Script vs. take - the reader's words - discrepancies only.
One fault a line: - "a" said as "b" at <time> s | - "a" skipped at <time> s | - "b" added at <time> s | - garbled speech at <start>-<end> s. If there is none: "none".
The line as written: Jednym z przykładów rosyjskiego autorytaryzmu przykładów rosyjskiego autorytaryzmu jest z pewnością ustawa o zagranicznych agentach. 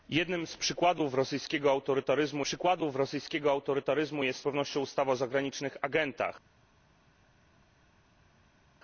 none